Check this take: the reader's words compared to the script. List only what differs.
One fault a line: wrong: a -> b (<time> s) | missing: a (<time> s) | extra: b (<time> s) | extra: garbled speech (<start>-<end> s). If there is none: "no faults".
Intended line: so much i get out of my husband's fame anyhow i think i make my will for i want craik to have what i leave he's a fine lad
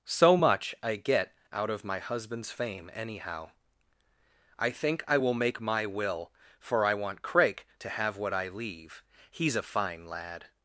extra: will (5.2 s)